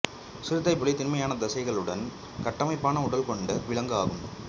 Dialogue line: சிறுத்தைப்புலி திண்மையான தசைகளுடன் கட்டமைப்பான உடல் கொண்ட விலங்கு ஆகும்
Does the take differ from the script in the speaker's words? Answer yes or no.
no